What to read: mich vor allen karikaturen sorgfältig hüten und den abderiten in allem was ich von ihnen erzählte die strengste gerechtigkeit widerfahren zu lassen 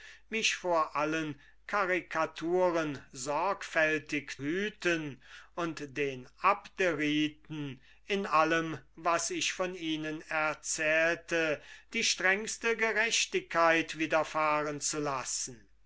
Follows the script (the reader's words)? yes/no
yes